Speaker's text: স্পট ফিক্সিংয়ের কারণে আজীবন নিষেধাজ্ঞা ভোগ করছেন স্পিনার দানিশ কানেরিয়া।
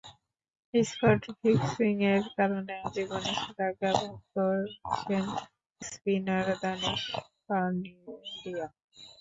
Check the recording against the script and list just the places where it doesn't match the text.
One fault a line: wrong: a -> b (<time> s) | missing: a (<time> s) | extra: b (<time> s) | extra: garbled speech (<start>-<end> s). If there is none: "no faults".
no faults